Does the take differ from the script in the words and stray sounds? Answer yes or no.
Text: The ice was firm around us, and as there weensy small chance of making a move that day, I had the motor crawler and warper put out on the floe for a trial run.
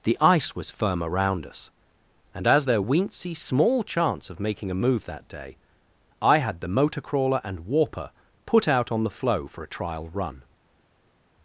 no